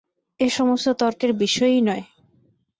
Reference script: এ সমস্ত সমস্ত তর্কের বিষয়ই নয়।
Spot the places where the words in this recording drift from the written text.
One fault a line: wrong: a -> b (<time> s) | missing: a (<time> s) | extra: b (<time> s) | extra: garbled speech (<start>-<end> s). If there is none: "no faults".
missing: সমস্ত (0.9 s)